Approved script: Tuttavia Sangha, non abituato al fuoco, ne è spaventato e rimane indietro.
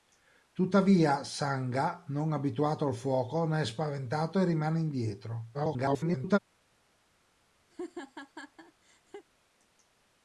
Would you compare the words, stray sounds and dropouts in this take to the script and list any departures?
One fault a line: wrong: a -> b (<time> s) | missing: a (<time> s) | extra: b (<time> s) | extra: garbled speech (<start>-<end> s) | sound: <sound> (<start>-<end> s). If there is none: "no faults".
extra: garbled speech (5.5-6.4 s)
sound: laugh (7.7-9.2 s)